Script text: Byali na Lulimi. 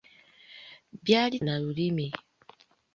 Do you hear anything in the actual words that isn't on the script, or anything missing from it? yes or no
no